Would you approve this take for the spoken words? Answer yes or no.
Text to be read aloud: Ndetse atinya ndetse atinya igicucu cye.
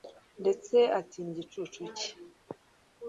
no